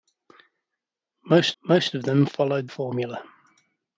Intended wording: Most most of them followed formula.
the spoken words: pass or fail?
pass